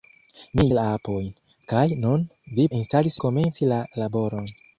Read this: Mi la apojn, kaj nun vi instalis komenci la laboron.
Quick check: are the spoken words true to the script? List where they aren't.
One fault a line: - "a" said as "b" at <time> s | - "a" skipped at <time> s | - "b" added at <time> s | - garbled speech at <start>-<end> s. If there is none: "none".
none